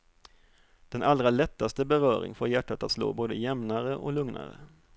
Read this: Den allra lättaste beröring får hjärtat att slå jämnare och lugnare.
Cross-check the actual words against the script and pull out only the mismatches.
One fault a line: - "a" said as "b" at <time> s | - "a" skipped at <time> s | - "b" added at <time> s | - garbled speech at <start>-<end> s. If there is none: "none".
- "både" added at 3.1 s